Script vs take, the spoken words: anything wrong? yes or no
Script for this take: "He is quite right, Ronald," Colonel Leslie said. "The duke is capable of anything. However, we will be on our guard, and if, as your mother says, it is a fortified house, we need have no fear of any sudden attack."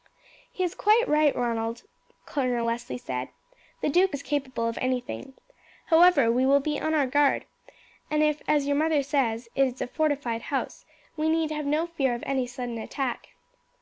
no